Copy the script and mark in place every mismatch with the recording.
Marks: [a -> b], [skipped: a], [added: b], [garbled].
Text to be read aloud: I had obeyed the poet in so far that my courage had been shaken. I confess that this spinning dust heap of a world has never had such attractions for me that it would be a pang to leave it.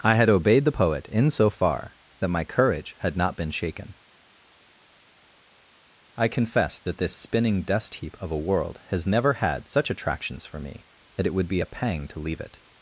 I had obeyed the poet in so far that my courage had [added: not] been shaken. I confess that this spinning dust heap of a world has never had such attractions for me that it would be a pang to leave it.